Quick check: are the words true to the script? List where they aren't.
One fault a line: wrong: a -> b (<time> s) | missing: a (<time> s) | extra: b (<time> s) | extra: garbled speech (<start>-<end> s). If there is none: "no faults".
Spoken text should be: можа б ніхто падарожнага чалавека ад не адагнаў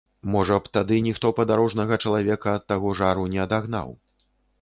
extra: тады (0.8 s)
extra: таго жару (2.7 s)